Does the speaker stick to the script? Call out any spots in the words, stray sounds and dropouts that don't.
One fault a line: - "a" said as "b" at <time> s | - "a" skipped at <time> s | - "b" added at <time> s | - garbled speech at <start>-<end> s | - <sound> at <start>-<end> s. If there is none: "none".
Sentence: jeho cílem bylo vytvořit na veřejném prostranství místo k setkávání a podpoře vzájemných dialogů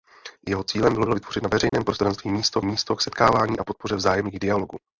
- "bylo" added at 1.0 s
- dropout at 1.7-1.7 s
- "místo" added at 2.6 s